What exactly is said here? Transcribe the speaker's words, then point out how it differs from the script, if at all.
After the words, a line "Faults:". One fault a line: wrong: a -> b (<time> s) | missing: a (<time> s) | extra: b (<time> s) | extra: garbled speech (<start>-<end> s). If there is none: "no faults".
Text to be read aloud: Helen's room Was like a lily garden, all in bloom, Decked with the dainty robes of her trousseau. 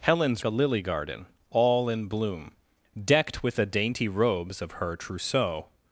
Helen's a lily garden, all in bloom, Decked with the dainty robes of her trousseau.
Faults:
missing: room Was like (0.4 s)